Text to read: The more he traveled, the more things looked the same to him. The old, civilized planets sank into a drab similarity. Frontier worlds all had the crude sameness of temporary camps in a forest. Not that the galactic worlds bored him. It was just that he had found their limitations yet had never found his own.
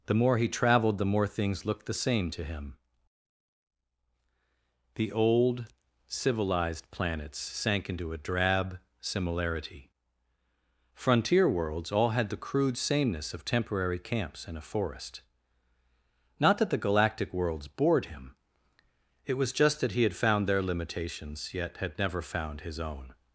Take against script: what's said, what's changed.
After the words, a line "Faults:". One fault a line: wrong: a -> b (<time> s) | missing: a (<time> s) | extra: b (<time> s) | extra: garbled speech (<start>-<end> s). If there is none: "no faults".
The more he traveled, the more things looked the same to him. The old, civilized planets sank into a drab similarity. Frontier worlds all had the crude sameness of temporary camps in a forest. Not that the galactic worlds bored him. It was just that he had found their limitations yet had never found his own.
Faults:
no faults